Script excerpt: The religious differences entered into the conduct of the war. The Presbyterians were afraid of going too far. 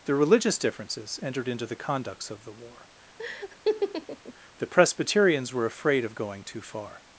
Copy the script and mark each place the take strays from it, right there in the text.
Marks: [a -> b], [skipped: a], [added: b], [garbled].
The religious differences entered into the [conduct -> conducts] of the war. The Presbyterians were afraid of going too far.